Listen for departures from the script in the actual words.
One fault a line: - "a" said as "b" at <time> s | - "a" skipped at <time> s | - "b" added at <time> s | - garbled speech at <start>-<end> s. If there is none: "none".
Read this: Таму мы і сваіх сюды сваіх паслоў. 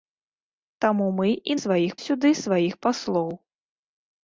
none